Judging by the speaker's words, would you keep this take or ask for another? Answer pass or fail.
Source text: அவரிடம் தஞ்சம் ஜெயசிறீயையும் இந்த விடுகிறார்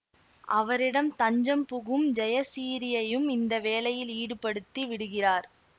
fail